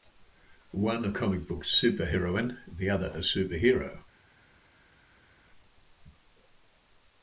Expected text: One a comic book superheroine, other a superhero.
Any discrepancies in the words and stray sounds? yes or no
yes